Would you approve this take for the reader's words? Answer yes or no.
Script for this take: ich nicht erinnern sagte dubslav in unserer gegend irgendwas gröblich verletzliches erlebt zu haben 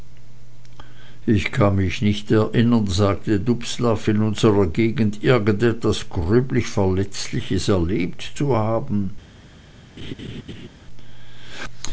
no